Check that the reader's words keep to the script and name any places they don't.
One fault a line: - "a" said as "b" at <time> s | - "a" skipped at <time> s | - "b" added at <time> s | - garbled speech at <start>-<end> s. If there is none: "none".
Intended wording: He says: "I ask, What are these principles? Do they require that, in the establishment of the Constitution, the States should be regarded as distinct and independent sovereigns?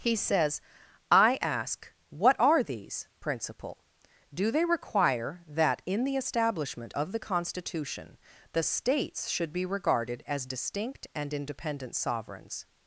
- "principles" said as "principle" at 3.2 s